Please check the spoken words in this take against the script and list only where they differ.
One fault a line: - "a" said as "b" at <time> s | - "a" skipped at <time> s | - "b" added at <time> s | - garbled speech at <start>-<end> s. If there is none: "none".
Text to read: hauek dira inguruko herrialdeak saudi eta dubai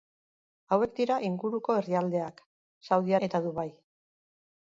none